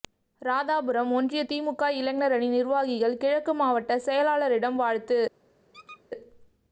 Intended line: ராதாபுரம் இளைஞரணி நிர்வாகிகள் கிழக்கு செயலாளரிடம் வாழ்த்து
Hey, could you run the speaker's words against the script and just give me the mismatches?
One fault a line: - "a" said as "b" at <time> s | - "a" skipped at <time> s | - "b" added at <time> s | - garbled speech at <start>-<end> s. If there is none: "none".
- "ஒன்றிய திமுக" added at 1.1 s
- "மாவட்ட" added at 3.5 s